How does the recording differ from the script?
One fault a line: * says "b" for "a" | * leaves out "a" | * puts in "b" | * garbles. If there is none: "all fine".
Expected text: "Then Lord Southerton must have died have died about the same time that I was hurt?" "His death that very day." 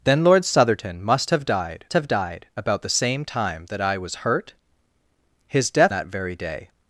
all fine